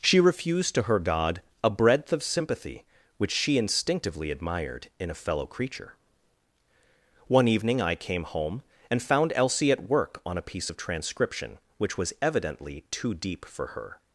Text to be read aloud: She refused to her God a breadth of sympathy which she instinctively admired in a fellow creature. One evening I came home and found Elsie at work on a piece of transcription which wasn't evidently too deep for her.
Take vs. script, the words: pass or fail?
fail